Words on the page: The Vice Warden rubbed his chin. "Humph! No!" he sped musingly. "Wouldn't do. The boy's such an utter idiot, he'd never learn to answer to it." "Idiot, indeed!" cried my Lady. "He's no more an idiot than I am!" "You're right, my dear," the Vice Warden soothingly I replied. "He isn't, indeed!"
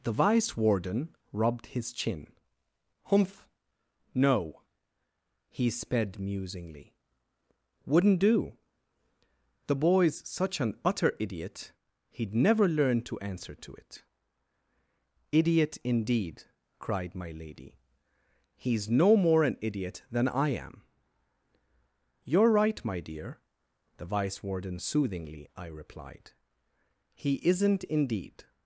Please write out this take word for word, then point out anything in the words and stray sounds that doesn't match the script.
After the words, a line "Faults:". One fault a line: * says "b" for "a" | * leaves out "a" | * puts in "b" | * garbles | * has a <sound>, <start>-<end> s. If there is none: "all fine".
The Vice Warden rubbed his chin. "Humph! No!" he sped musingly. "Wouldn't do. The boy's such an utter idiot, he'd never learn to answer to it." "Idiot, indeed!" cried my Lady. "He's no more an idiot than I am!" "You're right, my dear," the Vice Warden soothingly I replied. "He isn't, indeed!"
Faults:
all fine